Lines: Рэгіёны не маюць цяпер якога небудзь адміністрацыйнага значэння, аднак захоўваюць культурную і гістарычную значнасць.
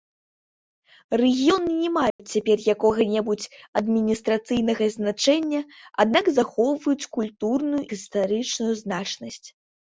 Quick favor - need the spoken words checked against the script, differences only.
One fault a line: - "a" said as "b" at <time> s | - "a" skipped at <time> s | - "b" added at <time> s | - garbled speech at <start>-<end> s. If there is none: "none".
- "і" skipped at 7.8 s